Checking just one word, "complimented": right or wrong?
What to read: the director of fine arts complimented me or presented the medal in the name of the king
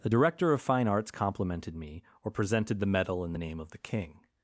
right